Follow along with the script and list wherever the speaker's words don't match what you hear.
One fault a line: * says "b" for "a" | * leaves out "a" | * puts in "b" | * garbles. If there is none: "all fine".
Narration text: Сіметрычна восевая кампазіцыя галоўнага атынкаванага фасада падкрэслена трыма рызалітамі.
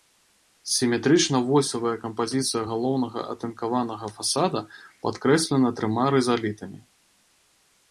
all fine